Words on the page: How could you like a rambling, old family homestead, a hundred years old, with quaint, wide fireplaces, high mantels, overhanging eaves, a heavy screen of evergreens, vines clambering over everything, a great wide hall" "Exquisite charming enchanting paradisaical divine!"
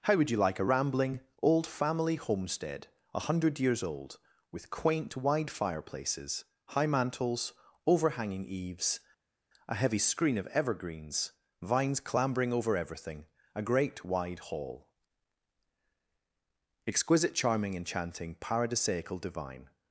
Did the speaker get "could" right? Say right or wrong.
wrong